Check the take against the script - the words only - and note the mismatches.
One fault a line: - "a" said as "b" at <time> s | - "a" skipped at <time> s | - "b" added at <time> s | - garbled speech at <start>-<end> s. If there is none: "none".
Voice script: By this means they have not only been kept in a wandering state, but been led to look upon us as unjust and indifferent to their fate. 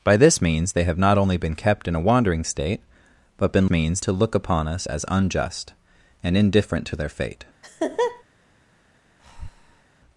- "led" said as "means" at 3.7 s